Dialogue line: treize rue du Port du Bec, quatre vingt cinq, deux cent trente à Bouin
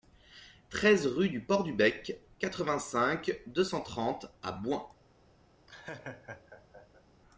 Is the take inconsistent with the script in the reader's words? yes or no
no